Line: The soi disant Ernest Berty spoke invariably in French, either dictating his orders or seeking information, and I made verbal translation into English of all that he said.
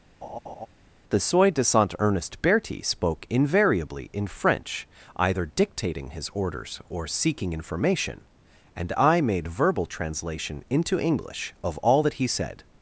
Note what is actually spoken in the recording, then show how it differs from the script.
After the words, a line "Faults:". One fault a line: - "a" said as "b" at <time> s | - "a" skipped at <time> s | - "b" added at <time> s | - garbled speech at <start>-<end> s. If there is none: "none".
The soi disant Ernest Berty spoke invariably in French, either dictating his orders or seeking information, and I made verbal translation into English of all that he said.
Faults:
none